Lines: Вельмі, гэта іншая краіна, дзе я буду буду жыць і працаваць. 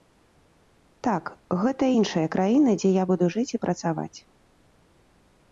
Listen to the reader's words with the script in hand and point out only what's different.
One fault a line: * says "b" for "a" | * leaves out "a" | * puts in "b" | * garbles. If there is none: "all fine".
* says "Так" for "Вельмі"
* leaves out "буду"